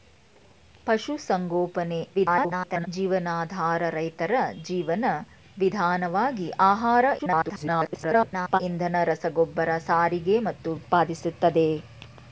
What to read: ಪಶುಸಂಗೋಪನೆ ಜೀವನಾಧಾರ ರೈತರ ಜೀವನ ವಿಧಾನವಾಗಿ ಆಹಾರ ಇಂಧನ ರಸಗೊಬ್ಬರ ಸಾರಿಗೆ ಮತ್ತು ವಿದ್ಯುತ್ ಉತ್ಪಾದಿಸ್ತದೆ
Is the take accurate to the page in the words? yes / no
no